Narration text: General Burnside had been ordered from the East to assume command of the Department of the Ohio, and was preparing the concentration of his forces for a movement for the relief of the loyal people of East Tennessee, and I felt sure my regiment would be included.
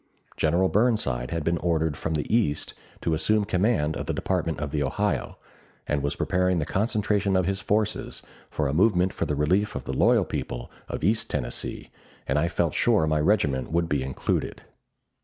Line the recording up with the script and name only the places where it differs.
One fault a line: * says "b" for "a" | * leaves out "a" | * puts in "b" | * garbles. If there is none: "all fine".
all fine